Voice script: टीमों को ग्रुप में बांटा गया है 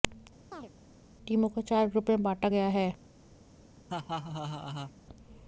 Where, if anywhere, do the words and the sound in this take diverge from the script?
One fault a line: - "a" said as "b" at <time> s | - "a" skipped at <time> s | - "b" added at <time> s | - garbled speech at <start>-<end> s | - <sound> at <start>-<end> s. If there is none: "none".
- chirp at 0.5-0.7 s
- "चार" added at 1.6 s
- laugh at 3.9-4.9 s